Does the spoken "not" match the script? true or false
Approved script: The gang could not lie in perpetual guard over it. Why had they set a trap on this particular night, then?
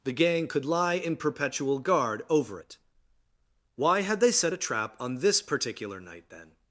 false